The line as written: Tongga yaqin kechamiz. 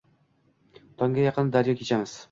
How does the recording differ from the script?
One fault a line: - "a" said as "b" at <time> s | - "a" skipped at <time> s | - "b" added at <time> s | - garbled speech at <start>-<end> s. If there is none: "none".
- "daryo" added at 1.6 s